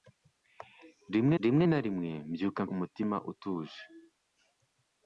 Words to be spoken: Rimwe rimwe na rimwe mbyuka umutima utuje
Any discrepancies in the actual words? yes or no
no